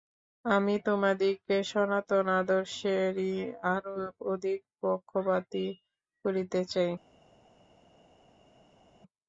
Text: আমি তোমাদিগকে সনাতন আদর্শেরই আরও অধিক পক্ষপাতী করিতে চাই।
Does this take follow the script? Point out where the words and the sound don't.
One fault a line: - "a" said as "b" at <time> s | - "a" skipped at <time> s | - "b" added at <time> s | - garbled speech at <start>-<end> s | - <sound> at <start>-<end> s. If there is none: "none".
none